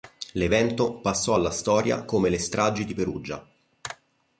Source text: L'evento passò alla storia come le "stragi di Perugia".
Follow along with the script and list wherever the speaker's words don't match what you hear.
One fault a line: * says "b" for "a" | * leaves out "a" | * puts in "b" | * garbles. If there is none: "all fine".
all fine